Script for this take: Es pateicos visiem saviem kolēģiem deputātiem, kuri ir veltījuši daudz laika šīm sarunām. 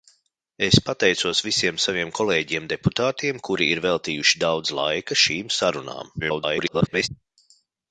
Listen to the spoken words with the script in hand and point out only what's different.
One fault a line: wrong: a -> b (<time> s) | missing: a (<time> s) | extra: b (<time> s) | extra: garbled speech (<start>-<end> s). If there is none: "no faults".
extra: garbled speech (6.2-7.1 s)